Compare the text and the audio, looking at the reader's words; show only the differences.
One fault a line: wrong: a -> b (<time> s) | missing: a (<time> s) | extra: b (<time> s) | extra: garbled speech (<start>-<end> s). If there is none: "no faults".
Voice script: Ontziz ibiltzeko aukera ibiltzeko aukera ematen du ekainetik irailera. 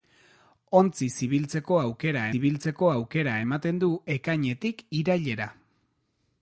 no faults